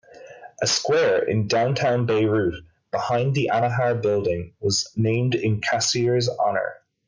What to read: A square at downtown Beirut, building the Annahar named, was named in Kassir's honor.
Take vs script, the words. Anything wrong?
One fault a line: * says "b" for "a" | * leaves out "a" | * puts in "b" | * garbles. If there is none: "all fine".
* says "in" for "at"
* says "behind" for "building"
* says "building" for "named"